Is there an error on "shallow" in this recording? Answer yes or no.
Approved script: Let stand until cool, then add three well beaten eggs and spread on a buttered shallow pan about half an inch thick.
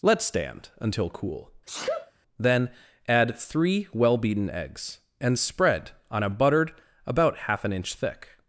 yes